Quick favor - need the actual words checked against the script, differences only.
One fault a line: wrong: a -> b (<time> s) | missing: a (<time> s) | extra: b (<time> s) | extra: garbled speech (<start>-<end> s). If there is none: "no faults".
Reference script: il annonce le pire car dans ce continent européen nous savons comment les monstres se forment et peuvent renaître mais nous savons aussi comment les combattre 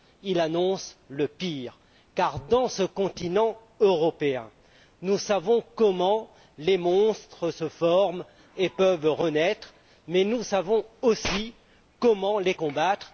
no faults